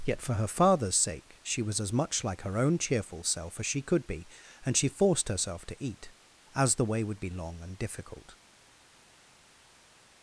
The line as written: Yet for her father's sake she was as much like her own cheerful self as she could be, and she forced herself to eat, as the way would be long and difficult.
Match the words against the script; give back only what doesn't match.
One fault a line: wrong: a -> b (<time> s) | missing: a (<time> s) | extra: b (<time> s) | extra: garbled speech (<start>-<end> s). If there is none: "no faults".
no faults